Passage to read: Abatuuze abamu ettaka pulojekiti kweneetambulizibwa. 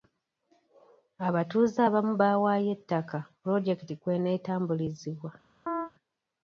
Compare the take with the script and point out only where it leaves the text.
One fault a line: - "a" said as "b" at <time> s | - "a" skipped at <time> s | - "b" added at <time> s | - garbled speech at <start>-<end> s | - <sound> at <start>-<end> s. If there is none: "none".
- "baawaayo" added at 2.2 s
- chirp at 5.7-5.9 s